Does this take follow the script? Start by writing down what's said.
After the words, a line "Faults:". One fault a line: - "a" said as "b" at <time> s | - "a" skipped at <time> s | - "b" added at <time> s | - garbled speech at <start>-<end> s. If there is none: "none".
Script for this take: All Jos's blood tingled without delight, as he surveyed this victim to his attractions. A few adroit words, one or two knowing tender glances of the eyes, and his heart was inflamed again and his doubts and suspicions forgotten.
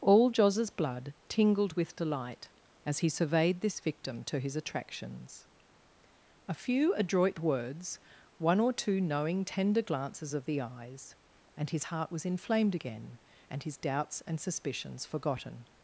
All Jos's blood tingled with delight, as he surveyed this victim to his attractions. A few adroit words, one or two knowing tender glances of the eyes, and his heart was inflamed again and his doubts and suspicions forgotten.
Faults:
- "without" said as "with" at 1.7 s